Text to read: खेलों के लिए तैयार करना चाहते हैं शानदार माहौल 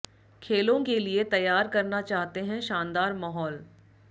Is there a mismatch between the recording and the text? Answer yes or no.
no